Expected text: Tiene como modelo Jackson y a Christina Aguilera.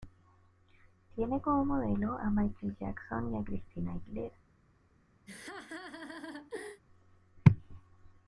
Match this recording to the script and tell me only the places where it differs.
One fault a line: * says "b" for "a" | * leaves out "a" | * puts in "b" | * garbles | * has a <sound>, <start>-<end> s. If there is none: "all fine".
* puts in "a Michael"
* has a laugh, 5.3-6.8 s